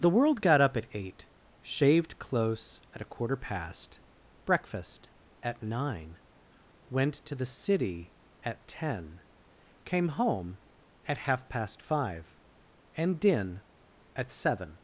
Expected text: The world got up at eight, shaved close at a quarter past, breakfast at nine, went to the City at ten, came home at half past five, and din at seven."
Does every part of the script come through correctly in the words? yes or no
yes